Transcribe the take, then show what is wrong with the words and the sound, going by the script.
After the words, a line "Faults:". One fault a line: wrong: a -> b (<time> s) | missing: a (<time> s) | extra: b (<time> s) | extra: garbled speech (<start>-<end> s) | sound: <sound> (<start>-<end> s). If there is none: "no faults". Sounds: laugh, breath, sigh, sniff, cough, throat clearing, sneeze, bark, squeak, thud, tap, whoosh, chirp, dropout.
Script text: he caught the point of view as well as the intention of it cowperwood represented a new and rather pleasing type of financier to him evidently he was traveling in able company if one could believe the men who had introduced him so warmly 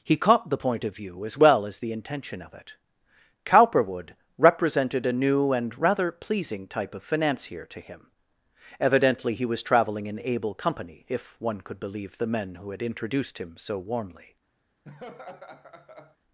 he caught the point of view as well as the intention of it cowperwood represented a new and rather pleasing type of financier to him evidently he was traveling in able company if one could believe the men who had introduced him so warmly
Faults:
sound: laugh (14.8-16.2 s)